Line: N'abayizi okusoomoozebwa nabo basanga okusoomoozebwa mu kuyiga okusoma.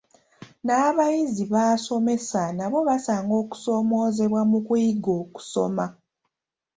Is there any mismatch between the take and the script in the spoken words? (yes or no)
yes